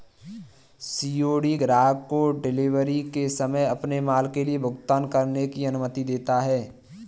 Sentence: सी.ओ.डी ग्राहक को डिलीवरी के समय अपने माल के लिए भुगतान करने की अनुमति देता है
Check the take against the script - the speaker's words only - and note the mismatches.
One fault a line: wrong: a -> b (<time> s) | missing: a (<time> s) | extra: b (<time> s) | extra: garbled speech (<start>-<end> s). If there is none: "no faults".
no faults